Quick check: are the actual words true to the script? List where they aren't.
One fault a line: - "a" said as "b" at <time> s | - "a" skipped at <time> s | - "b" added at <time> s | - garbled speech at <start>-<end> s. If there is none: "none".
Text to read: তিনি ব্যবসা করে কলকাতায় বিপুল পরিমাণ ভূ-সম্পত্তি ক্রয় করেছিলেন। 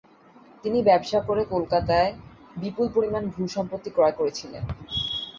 none